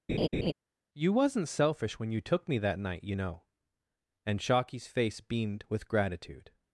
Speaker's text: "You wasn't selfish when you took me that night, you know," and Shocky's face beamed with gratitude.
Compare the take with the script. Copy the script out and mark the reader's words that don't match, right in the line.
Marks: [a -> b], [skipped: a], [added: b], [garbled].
"You wasn't selfish when you took me that night, you know," and Shocky's face beamed with gratitude.